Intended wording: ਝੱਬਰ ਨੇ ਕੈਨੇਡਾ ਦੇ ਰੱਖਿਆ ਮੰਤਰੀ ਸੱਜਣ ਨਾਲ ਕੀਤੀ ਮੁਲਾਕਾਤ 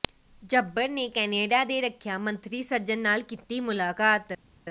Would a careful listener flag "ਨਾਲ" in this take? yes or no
no